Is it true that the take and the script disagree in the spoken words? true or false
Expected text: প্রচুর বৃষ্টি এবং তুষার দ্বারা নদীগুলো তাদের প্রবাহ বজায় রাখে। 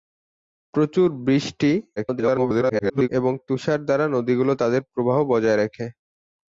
true